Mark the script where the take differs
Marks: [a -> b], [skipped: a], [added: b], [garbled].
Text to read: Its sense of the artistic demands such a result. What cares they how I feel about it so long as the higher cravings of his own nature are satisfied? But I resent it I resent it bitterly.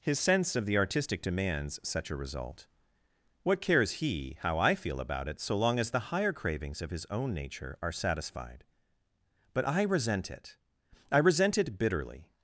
[Its -> His] sense of the artistic demands such a result. What cares [they -> he] how I feel about it so long as the higher cravings of his own nature are satisfied? But I resent it I resent it bitterly.